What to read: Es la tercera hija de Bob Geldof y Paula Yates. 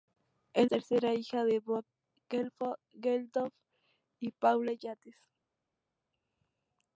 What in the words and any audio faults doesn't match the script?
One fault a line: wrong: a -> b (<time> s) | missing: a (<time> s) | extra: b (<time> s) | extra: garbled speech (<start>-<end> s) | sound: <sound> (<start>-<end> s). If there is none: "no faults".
missing: la (0.7 s)